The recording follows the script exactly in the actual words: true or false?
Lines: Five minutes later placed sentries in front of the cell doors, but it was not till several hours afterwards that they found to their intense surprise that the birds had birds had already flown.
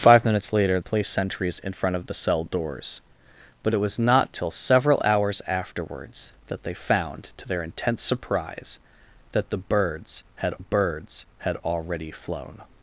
true